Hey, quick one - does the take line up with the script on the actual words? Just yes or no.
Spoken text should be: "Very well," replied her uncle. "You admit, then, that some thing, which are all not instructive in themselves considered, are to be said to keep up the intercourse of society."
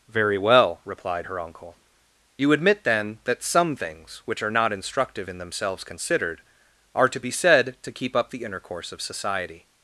no